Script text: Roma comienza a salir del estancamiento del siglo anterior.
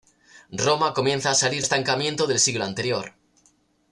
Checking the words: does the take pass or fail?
fail